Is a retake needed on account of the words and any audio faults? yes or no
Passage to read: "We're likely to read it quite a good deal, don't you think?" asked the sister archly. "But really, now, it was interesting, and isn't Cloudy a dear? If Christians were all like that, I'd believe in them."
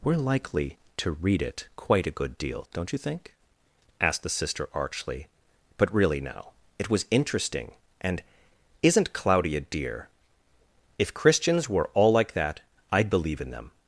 no